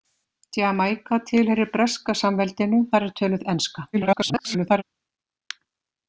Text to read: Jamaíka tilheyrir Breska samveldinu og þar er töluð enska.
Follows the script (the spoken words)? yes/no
no